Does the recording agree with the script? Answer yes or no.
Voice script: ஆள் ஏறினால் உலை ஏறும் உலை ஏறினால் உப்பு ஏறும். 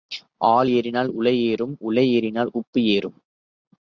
yes